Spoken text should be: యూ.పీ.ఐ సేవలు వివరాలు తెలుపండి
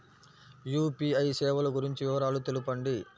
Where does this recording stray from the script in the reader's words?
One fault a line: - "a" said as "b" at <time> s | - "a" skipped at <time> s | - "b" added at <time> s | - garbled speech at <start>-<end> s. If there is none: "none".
- "గురించి" added at 1.7 s